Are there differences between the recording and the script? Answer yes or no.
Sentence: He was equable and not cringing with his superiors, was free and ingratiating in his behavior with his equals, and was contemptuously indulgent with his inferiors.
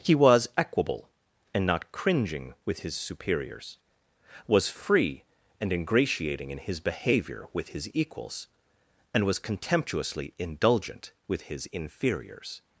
no